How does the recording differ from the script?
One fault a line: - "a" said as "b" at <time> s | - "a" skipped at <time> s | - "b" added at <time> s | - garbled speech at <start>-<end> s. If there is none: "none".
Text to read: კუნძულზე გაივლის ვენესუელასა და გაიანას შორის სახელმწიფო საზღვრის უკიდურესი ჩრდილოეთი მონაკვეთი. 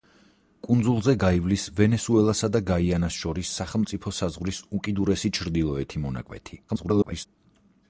- garbled speech at 6.7-7.3 s